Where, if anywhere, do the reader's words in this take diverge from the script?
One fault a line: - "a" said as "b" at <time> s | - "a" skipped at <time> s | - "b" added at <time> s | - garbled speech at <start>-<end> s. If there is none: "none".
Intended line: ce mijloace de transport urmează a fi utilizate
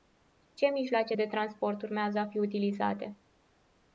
none